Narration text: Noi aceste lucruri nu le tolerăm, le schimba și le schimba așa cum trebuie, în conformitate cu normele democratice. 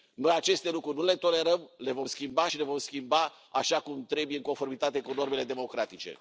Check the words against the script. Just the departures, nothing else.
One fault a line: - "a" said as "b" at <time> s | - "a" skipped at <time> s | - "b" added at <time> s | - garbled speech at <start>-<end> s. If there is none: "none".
- "vom" added at 1.9 s
- "vom" added at 2.6 s